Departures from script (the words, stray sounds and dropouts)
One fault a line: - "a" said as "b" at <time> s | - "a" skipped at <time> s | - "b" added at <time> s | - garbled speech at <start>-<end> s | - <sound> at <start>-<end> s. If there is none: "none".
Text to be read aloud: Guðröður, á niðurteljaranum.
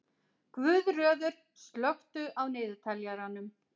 - "slökktu" added at 1.6 s